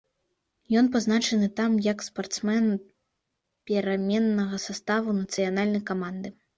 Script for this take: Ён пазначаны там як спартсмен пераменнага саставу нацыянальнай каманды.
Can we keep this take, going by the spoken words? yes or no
yes